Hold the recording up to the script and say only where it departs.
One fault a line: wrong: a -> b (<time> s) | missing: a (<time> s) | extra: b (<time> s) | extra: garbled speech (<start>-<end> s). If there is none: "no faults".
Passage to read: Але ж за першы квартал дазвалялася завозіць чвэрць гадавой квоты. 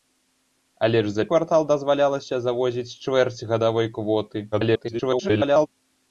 missing: першы (1.2 s)
extra: garbled speech (4.5-5.7 s)